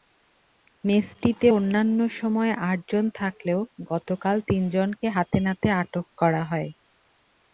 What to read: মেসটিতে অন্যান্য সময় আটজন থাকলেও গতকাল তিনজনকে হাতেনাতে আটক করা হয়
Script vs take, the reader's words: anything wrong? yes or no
no